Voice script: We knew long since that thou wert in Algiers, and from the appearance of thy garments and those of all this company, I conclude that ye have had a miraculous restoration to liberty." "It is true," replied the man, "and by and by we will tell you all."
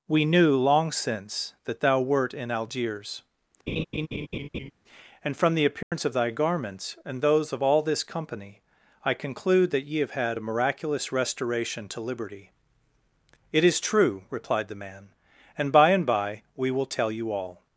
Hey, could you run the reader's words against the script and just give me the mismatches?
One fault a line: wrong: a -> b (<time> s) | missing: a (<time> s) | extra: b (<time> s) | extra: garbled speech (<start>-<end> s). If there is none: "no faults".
no faults